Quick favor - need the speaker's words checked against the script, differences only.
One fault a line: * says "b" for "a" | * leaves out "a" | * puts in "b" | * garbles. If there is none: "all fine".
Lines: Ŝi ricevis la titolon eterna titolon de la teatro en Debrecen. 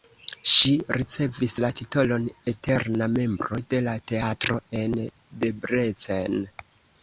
* says "membro" for "titolon"